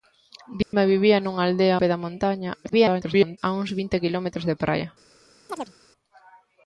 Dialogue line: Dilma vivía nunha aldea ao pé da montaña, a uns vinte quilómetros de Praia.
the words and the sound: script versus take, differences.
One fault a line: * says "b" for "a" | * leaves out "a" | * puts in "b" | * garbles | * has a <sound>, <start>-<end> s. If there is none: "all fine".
* has a dropout, 0.6-0.7 s
* leaves out "ao"
* garbles
* has a chirp, 5.5-5.7 s